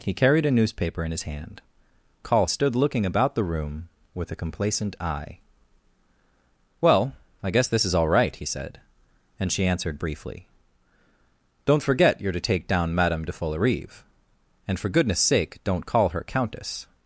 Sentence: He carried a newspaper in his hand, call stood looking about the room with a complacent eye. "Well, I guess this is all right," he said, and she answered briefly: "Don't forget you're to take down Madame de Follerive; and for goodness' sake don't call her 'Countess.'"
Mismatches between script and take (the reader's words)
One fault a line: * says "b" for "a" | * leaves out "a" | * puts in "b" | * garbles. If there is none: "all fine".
all fine